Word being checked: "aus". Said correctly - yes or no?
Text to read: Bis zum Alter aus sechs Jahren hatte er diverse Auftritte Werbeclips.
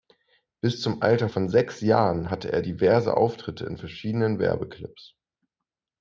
no